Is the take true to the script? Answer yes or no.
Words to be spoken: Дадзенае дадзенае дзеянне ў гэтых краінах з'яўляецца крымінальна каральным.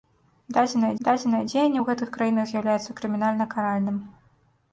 yes